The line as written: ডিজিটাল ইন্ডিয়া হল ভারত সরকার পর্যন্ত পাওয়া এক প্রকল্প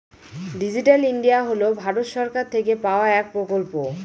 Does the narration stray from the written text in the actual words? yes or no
yes